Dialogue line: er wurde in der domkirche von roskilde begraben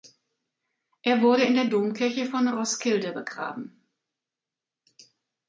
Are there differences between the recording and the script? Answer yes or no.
no